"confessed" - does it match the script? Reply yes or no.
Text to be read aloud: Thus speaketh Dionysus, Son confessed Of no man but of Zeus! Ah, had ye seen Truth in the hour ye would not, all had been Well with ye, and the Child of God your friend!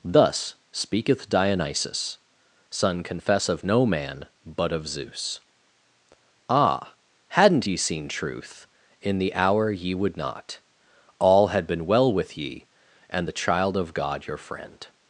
no